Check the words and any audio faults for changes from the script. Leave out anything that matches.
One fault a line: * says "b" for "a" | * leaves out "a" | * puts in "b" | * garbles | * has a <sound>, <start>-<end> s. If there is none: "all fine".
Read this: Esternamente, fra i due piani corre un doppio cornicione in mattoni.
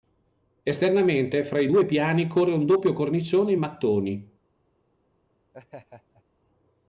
* has a laugh, 5.5-6.2 s